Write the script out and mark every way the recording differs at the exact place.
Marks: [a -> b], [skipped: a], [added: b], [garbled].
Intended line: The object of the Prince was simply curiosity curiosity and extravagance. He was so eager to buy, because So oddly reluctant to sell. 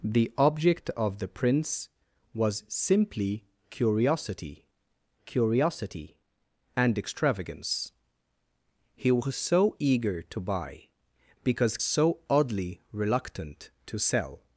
The object of the Prince was simply curiosity curiosity and extravagance. He was so eager to buy, because So oddly reluctant to sell.